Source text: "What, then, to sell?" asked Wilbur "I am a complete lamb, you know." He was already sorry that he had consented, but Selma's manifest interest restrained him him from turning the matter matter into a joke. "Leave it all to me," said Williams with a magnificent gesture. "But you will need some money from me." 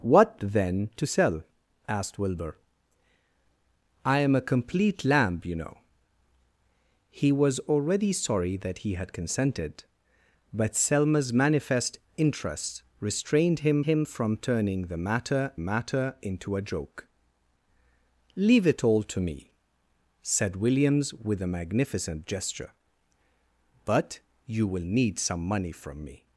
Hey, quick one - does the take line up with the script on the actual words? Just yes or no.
yes